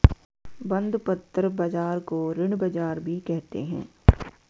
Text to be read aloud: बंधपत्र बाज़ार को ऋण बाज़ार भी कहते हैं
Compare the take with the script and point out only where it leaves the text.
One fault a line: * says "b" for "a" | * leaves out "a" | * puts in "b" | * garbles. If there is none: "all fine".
all fine